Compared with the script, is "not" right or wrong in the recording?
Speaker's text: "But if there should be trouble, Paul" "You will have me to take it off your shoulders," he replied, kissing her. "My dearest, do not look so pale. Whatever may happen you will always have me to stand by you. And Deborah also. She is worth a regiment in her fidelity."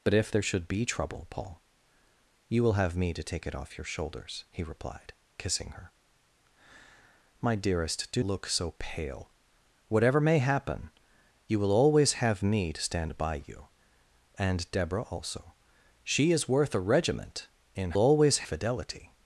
wrong